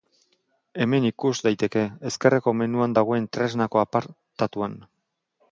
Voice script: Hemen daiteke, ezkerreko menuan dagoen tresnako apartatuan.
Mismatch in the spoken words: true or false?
true